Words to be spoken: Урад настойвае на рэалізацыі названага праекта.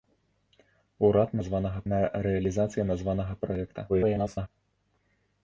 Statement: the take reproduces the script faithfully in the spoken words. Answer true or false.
false